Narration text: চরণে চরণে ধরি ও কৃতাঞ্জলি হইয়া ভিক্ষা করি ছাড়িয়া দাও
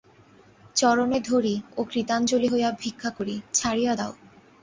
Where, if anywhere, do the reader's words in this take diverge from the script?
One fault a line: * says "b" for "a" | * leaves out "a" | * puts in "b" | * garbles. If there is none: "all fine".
* leaves out "চরণে"